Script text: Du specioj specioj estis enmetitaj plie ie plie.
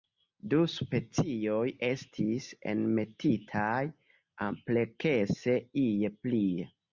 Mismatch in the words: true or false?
true